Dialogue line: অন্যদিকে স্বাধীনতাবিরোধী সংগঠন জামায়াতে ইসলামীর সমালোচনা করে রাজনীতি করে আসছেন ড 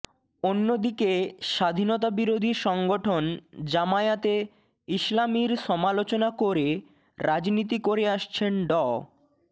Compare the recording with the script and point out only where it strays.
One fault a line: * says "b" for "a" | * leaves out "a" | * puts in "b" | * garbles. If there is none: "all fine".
all fine